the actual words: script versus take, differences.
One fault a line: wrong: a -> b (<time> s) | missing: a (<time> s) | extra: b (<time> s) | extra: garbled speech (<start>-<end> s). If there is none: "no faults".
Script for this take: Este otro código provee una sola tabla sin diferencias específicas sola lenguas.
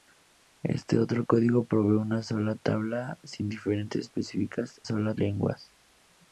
no faults